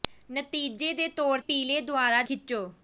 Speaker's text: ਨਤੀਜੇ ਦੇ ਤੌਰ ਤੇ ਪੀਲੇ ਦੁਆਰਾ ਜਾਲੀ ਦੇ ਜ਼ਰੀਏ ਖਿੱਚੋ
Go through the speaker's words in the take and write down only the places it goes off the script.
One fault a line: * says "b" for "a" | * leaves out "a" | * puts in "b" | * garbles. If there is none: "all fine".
* leaves out "ਤੇ"
* leaves out "ਜਾਲੀ ਦੇ ਜ਼ਰੀਏ"